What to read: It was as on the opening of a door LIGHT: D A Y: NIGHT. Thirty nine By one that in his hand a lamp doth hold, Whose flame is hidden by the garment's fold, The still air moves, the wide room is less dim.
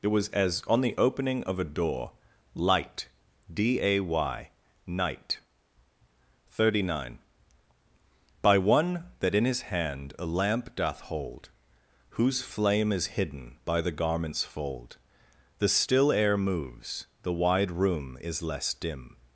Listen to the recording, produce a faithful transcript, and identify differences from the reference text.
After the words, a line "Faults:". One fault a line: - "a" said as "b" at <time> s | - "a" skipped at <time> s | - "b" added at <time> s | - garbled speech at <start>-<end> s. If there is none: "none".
It was as on the opening of a door LIGHT: D A Y: NIGHT. Thirty nine By one that in his hand a lamp doth hold, Whose flame is hidden by the garment's fold, The still air moves, the wide room is less dim.
Faults:
none